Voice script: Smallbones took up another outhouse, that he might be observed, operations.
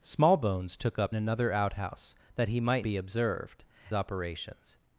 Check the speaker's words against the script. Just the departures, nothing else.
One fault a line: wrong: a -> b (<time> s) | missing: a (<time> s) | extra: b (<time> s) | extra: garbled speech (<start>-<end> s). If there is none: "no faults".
no faults